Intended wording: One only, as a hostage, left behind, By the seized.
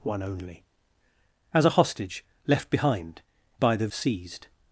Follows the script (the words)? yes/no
yes